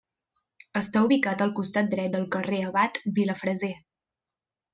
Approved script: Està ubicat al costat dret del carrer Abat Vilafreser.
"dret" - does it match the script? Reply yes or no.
yes